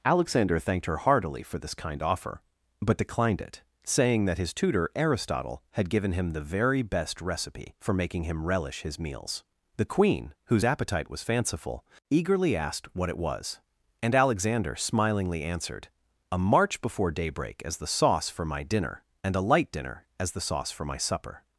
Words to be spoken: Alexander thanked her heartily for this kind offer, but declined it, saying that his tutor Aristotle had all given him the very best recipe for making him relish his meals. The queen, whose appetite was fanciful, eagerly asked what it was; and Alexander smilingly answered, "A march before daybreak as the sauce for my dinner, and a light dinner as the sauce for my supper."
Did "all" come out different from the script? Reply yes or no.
yes